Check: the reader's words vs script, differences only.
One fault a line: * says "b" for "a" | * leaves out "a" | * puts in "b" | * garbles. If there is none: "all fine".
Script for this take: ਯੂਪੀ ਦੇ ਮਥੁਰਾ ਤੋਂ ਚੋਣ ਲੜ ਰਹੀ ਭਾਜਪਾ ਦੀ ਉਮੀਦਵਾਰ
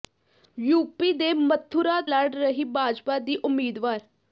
* leaves out "ਤੋਂ ਚੋਣ"